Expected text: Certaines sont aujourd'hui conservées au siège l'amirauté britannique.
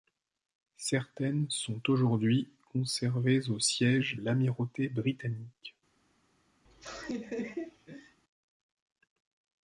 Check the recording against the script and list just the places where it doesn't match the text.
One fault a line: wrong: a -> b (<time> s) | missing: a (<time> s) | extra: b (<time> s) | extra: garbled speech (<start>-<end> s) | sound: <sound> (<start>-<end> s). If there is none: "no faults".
sound: laugh (6.6-8.2 s)